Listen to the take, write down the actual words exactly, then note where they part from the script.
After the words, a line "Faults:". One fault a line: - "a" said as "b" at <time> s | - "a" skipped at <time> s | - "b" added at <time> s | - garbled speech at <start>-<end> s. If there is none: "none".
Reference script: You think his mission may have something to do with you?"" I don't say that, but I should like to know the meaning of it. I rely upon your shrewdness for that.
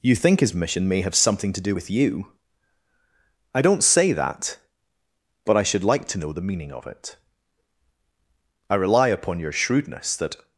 You think his mission may have something to do with you?"" I don't say that, but I should like to know the meaning of it. I rely upon your shrewdness that.
Faults:
- "for" skipped at 10.2 s